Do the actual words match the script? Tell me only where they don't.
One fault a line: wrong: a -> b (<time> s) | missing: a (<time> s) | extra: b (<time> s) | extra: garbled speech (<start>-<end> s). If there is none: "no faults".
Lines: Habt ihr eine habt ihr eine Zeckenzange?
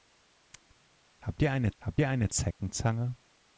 no faults